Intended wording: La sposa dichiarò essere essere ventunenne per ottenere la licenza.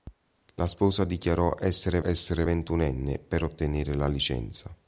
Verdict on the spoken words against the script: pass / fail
pass